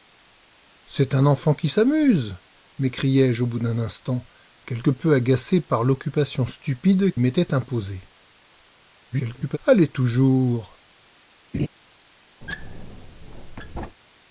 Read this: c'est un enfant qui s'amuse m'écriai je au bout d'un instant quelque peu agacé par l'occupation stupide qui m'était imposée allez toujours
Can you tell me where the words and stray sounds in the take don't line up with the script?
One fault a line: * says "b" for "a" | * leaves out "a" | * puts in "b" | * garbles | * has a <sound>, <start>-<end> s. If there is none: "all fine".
* leaves out "qui"
* garbles
* has a laugh, 11.5-11.7 s
* has a squeak, 12.4-14.0 s